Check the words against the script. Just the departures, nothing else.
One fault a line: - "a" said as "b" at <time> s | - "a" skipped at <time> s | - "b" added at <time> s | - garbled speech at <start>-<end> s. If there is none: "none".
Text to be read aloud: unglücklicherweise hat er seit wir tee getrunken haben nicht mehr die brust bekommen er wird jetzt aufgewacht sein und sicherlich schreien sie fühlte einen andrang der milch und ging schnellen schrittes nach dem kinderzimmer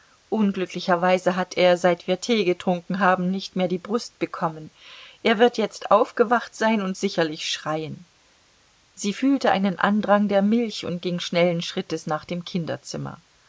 none